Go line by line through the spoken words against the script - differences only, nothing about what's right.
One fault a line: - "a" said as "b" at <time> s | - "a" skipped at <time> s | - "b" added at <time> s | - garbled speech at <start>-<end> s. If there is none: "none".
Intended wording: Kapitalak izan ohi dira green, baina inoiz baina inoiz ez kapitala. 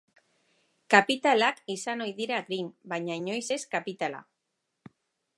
- "baina inoiz" skipped at 3.4 s